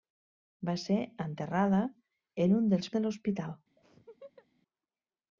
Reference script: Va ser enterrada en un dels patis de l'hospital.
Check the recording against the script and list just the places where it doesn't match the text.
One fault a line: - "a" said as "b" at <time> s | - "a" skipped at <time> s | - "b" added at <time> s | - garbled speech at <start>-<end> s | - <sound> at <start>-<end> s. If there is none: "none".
- "patis" skipped at 2.9 s
- laugh at 3.8-4.5 s